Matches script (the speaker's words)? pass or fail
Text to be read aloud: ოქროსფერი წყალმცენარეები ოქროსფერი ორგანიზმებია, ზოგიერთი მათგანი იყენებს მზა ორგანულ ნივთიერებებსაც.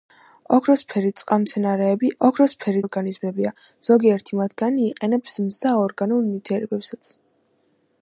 pass